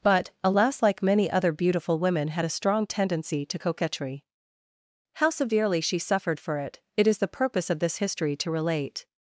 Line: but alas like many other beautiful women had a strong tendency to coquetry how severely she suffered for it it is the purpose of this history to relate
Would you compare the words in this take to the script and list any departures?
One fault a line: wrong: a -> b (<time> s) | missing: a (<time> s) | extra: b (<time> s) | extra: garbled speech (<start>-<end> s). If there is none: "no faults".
no faults